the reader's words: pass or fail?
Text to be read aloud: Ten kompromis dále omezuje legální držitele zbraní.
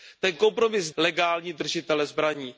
fail